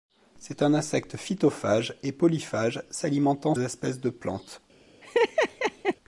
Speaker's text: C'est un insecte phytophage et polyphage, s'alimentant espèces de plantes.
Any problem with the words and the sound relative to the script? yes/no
yes